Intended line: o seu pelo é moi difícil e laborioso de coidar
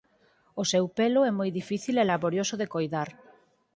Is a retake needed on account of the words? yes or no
no